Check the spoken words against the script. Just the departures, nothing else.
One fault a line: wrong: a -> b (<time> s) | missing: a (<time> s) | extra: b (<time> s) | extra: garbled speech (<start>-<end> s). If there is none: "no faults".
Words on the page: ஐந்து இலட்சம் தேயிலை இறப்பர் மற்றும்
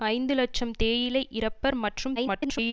extra: garbled speech (2.2-2.7 s)